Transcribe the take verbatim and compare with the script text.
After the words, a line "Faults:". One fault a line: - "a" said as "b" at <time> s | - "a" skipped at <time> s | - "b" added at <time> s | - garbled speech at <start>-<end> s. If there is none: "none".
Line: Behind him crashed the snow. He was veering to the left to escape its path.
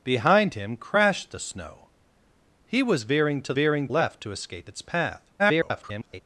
Behind him crashed the snow. He was veering to veering left to escape its path. [garbled]
Faults:
- "the" said as "veering" at 3.5 s
- garbled speech at 5.4-6.2 s